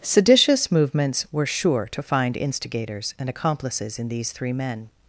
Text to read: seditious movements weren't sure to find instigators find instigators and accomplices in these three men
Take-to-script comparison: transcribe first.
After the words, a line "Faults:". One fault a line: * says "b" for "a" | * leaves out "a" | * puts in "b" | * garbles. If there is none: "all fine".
seditious movements were sure to find instigators and accomplices in these three men
Faults:
* says "were" for "weren't"
* leaves out "find instigators"